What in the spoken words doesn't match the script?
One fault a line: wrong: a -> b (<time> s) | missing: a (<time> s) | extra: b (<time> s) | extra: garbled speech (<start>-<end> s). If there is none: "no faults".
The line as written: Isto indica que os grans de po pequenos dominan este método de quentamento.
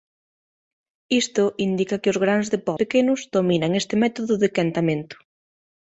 no faults